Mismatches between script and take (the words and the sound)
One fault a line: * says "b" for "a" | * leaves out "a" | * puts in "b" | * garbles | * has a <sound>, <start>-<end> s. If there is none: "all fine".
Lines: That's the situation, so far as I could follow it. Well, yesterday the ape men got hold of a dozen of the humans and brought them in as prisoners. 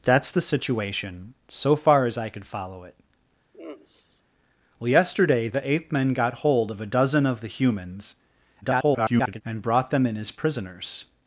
* has a sigh, 3.5-4.2 s
* garbles